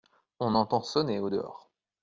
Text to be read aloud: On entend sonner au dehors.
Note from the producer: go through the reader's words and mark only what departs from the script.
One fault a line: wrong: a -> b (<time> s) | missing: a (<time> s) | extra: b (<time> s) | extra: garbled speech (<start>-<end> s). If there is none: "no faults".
no faults